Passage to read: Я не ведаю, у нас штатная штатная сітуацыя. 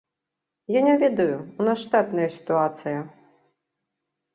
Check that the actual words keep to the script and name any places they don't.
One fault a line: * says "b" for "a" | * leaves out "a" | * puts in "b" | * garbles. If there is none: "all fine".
* leaves out "штатная"